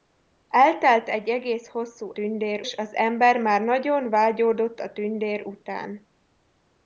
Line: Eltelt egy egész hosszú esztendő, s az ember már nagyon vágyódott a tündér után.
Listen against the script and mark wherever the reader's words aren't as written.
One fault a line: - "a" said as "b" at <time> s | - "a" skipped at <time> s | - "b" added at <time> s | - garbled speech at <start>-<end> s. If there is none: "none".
- "esztendő" said as "tündér" at 2.1 s